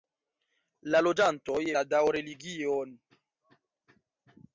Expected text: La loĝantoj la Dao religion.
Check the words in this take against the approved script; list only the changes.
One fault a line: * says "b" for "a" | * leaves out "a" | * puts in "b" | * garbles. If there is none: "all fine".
all fine